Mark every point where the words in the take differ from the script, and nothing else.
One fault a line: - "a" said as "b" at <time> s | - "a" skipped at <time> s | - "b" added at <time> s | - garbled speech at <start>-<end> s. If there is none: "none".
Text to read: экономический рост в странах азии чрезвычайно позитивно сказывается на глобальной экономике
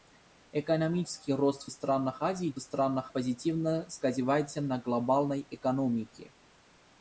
- "чрезвычайно" said as "странах" at 2.6 s